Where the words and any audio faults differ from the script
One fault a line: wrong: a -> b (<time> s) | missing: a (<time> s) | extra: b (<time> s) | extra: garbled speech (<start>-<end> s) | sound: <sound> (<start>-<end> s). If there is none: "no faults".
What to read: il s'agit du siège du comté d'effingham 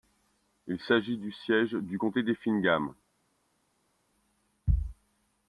no faults